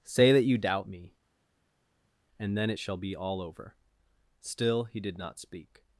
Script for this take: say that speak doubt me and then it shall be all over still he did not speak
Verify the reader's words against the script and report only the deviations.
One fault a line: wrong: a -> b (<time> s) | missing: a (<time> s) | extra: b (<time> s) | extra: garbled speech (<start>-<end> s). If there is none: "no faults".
wrong: speak -> you (0.4 s)